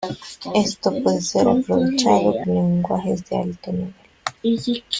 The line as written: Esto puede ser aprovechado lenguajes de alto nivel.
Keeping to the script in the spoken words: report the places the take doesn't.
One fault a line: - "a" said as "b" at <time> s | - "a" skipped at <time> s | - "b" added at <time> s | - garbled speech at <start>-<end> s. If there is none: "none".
none